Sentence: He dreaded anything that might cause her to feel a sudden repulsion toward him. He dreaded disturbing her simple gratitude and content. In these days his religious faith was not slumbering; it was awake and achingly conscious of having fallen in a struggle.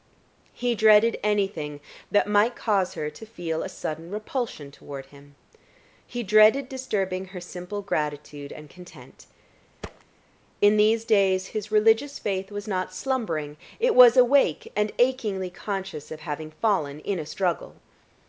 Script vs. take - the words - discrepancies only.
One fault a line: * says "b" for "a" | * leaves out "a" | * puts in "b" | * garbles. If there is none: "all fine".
all fine